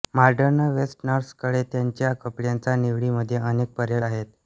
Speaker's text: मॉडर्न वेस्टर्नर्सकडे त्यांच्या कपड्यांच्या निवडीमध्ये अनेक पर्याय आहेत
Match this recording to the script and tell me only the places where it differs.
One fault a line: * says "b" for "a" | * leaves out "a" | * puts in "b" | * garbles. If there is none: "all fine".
all fine